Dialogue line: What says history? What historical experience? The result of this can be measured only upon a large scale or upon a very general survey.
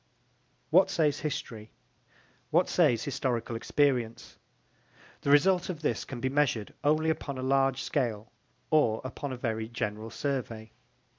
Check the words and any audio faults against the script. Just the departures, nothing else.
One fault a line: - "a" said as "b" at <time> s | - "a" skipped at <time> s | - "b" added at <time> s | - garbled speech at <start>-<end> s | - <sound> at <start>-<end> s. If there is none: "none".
- "says" added at 2.7 s